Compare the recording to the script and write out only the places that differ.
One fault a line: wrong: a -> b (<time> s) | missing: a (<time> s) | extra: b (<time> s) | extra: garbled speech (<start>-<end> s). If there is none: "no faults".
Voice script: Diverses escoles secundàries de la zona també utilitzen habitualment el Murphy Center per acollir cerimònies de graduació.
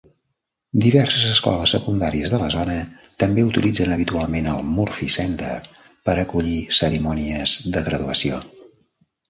no faults